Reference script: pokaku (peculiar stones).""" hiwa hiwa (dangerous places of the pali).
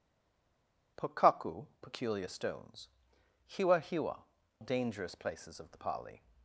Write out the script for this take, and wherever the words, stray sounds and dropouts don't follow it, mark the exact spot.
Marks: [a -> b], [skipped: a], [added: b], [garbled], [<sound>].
pokaku (peculiar stones).""" hiwa hiwa (dangerous places of the pali).